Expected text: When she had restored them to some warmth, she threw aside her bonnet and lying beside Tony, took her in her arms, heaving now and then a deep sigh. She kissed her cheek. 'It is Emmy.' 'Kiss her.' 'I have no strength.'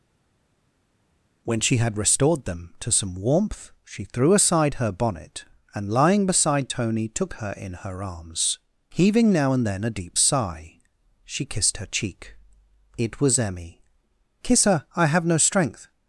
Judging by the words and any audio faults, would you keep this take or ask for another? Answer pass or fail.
fail